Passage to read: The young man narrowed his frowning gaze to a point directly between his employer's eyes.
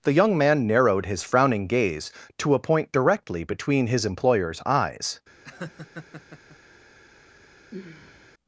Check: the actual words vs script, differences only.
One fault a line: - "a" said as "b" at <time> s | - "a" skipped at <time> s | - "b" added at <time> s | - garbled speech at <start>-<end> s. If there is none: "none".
none